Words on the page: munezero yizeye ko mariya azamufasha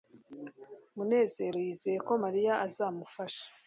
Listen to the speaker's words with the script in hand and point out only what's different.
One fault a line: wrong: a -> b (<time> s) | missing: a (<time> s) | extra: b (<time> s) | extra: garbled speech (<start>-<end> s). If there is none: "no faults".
no faults